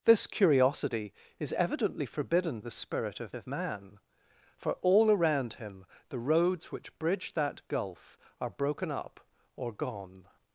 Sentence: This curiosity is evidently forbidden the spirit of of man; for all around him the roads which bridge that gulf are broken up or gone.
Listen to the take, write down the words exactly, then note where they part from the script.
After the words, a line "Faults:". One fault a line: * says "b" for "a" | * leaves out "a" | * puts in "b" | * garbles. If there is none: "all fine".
This curiosity is evidently forbidden the spirit of of man; for all around him the roads which bridge that gulf are broken up or gone.
Faults:
all fine